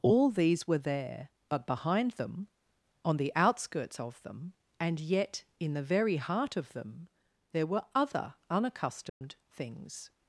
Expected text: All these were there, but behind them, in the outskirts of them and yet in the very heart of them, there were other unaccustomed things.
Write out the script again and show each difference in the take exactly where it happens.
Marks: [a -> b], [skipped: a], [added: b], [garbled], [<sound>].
All these were there, but behind them, [in -> on] the outskirts of them and yet in the very heart of them, there were other unaccustomed [dropout] things.